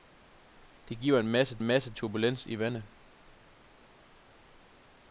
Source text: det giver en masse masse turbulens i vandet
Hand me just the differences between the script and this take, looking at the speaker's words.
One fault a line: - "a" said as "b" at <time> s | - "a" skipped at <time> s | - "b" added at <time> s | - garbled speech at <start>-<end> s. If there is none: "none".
none